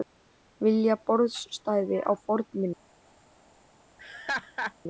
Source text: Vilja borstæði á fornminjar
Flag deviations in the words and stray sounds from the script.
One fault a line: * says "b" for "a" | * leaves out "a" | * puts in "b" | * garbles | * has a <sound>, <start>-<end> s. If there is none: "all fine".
* has a laugh, 4.0-4.7 s